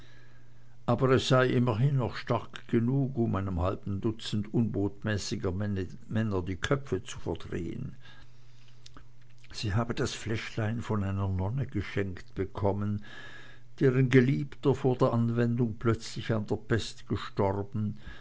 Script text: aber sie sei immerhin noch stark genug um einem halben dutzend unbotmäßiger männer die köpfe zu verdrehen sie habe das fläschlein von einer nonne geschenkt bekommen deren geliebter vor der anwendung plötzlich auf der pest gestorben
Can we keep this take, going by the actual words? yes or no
no